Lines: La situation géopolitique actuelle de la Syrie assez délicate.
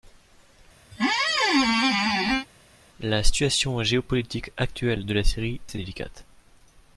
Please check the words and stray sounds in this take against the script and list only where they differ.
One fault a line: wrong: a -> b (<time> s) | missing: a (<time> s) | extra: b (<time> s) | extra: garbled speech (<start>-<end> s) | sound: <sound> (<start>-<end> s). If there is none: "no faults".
sound: squeak (0.9-2.5 s)